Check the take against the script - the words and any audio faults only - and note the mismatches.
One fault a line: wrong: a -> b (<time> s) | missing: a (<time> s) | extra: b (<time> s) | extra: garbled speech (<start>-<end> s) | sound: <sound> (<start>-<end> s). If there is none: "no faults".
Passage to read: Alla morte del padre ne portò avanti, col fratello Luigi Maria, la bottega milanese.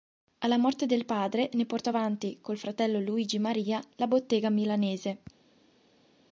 no faults